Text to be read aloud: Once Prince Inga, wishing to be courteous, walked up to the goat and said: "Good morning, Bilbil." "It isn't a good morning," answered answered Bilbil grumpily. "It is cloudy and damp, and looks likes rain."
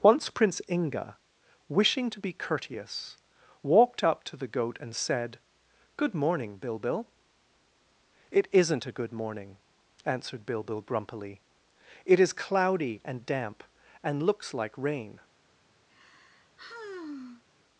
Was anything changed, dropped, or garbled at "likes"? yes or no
yes